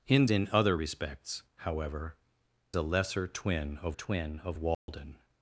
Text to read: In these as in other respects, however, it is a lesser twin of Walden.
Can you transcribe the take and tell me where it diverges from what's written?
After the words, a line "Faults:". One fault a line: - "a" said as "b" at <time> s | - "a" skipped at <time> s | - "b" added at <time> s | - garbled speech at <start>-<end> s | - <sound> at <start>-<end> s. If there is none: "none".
In in other respects, however, a lesser twin of twin of Walden.
Faults:
- "these as" skipped at 0.2 s
- "it is a lesser" said as "a lesser twin of" at 2.7 s
- dropout at 4.7-4.9 s